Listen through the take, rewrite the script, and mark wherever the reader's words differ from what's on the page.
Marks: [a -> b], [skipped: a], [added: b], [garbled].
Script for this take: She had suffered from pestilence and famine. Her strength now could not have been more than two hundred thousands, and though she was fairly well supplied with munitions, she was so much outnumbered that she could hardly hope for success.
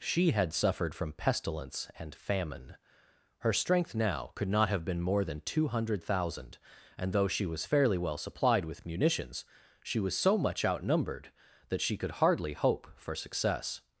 She had suffered from pestilence and famine. Her strength now could not have been more than two hundred [thousands, -> thousand] and though she was fairly well supplied with munitions, she was so much outnumbered that she could hardly hope for success.